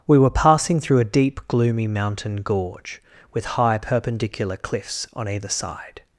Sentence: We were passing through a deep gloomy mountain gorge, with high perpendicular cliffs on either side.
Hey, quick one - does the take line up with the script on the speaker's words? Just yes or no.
yes